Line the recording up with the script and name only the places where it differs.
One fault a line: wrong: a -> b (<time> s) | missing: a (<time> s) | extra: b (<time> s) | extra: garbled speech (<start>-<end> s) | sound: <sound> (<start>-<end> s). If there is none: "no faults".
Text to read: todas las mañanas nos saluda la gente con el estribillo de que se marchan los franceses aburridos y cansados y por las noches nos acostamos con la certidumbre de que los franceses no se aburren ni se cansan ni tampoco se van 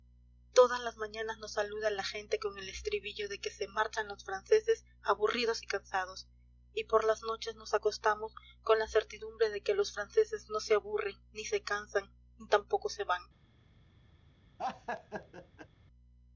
sound: laugh (14.6-15.7 s)